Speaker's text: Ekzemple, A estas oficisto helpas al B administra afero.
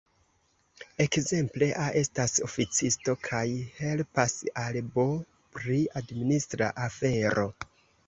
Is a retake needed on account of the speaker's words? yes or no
yes